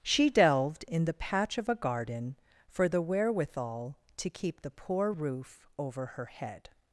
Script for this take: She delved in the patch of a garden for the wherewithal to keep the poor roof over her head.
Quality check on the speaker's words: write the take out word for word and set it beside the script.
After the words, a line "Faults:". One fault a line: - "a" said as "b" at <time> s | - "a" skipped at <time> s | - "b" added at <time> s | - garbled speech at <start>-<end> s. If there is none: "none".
She delved in the patch of a garden for the wherewithal to keep the poor roof over her head.
Faults:
none